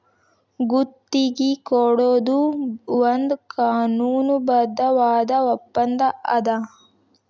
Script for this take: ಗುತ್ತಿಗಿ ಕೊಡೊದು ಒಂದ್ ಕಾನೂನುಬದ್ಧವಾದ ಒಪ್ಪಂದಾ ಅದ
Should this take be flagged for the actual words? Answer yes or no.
no